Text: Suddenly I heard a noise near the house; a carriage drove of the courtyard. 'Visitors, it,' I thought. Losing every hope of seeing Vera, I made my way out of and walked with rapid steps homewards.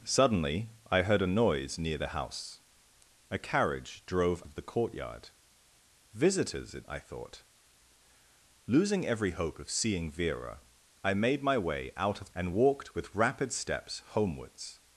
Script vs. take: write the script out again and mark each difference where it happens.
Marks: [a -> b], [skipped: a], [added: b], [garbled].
Suddenly I heard a noise near the house; a carriage drove of the courtyard. 'Visitors, it,' I thought. Losing every hope of seeing Vera, I made my way out of and walked with rapid steps homewards.